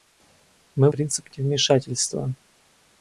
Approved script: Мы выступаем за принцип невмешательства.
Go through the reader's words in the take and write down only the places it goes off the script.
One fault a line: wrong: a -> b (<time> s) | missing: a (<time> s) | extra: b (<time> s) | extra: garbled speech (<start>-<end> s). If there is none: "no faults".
missing: выступаем за (0.9 s)